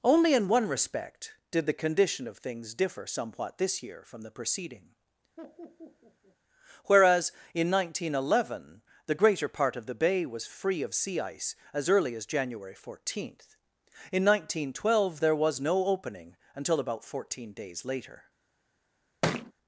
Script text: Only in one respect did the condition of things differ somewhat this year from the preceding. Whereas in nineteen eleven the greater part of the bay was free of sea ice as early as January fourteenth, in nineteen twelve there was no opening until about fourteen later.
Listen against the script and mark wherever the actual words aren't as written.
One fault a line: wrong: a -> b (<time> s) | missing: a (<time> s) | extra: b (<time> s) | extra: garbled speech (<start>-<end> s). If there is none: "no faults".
extra: days (17.5 s)